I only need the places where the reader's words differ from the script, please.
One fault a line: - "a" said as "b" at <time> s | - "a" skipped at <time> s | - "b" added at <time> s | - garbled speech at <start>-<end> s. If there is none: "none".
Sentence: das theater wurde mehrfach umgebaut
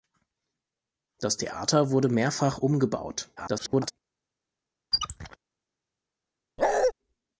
- garbled speech at 3.4-3.9 s